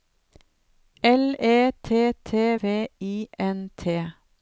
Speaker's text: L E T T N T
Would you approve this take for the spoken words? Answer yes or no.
no